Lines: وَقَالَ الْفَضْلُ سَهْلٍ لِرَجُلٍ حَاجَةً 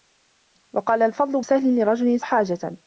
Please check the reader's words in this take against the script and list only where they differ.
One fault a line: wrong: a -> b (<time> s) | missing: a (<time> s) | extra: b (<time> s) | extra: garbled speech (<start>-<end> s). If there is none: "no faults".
no faults